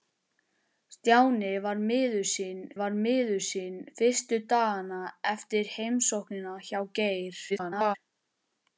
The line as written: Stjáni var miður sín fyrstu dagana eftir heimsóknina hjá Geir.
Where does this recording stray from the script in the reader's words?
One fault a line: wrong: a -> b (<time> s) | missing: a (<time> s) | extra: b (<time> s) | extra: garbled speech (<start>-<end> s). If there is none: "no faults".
extra: var miður sín (2.8 s)
extra: garbled speech (7.5-8.0 s)